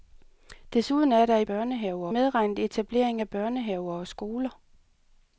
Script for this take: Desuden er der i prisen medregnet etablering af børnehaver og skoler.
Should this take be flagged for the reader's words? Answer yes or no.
yes